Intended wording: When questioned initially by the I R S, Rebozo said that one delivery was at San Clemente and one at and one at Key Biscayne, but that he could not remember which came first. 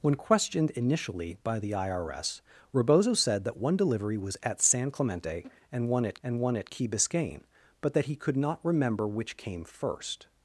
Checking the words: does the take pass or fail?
pass